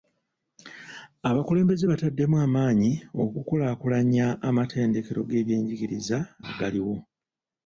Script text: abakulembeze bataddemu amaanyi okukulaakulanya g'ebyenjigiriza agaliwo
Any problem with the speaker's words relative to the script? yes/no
yes